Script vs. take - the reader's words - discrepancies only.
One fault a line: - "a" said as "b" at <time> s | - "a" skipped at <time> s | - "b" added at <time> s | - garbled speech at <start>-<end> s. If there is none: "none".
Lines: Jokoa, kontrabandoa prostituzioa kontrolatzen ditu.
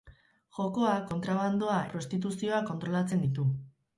none